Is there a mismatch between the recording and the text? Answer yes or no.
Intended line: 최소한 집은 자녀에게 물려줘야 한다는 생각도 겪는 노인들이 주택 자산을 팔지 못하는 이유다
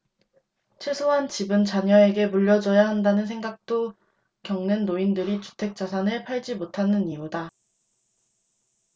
no